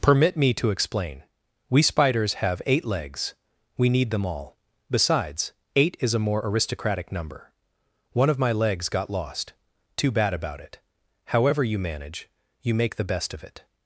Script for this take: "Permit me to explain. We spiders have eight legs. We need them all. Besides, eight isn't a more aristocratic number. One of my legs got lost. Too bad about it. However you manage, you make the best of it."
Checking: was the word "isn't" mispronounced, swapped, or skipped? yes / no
yes